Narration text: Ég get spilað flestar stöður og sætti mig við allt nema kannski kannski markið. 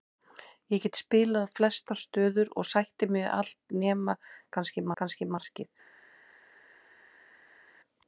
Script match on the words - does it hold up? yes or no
yes